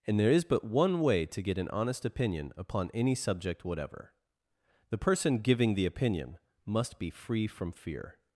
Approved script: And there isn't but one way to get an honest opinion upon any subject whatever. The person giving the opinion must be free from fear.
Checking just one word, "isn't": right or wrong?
wrong